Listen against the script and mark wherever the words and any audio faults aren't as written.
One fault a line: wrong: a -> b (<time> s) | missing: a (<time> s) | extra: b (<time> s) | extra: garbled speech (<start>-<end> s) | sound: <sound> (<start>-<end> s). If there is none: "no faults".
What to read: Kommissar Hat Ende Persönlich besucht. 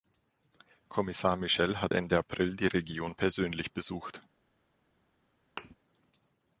extra: Michel (1.4 s)
extra: April die Region (2.2 s)
sound: thud (5.6-5.8 s)